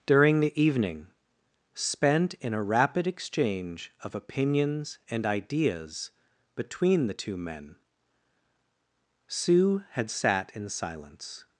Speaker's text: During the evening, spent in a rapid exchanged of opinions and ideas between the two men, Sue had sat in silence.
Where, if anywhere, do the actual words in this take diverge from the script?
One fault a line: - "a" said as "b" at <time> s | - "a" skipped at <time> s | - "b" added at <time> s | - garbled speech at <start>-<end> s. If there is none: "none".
- "exchanged" said as "exchange" at 3.0 s